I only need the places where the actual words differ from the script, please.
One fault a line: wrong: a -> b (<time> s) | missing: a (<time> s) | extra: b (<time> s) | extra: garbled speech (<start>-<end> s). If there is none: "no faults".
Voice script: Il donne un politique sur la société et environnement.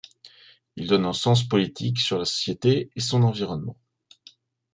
extra: sens (1.1 s)
extra: son (3.0 s)